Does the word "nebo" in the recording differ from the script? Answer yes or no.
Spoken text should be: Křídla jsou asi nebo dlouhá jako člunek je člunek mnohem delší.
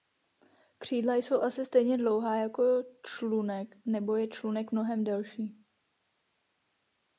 yes